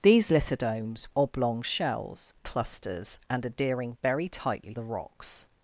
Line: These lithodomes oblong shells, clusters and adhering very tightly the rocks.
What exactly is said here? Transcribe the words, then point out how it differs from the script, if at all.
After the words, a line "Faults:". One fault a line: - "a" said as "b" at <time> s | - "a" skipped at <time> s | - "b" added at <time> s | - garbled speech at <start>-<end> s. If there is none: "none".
These lithodomes oblong shells, clusters and adhering very tightly the rocks.
Faults:
none